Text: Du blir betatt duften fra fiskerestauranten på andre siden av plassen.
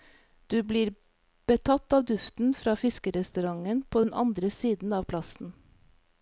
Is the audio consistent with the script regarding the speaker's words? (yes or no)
no